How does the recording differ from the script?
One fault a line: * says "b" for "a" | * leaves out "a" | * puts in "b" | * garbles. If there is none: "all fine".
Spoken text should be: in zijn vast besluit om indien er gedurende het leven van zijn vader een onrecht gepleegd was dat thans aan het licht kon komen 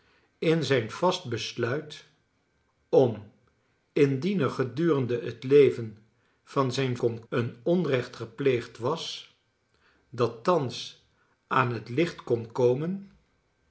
* says "kon" for "vader"